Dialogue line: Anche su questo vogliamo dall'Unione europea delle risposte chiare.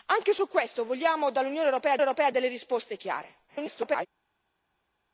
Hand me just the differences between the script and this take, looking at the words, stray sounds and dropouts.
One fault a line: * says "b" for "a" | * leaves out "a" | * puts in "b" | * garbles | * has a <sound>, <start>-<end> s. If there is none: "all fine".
* puts in "europea"
* garbles